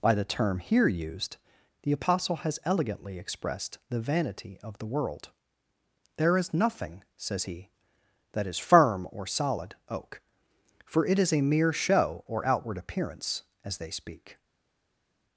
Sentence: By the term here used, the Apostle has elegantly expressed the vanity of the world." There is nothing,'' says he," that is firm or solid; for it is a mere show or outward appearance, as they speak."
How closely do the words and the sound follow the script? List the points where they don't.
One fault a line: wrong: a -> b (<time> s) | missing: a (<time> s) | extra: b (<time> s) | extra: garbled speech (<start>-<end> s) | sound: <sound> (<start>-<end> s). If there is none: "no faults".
extra: oak (9.9 s)